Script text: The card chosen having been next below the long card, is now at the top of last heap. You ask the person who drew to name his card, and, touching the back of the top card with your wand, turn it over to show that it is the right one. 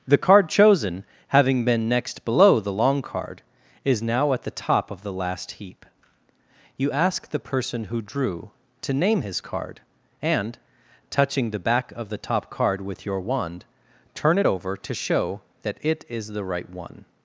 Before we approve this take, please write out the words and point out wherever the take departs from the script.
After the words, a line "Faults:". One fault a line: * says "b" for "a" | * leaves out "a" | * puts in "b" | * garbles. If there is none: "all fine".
The card chosen having been next below the long card, is now at the top of the last heap. You ask the person who drew to name his card, and, touching the back of the top card with your wand, turn it over to show that it is the right one.
Faults:
* puts in "the"